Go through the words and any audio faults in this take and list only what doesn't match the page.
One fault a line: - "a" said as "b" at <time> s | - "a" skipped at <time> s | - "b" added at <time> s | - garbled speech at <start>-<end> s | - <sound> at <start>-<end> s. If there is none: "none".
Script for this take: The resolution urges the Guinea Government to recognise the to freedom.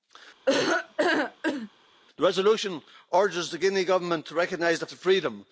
- laugh at 0.5-1.7 s